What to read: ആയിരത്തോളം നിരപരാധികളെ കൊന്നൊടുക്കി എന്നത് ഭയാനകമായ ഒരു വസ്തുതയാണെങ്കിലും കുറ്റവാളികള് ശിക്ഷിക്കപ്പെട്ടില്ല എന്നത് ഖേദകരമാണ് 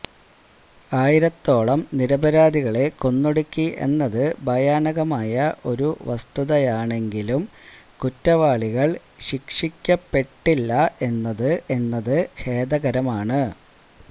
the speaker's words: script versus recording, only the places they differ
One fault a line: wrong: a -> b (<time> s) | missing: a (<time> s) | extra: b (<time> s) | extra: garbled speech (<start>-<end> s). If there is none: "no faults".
extra: എന്നത് (11.8 s)